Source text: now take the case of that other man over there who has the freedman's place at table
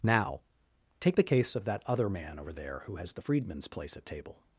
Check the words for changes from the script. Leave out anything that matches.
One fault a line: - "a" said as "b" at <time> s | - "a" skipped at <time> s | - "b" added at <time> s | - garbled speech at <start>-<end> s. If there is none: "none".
none